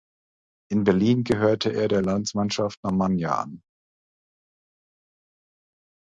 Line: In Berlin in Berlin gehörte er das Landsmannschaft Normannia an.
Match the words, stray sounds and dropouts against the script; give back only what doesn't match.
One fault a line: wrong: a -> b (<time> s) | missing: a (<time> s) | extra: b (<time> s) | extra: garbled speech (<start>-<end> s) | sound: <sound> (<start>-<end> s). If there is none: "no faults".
missing: in Berlin (1.2 s)
wrong: das -> der (1.9 s)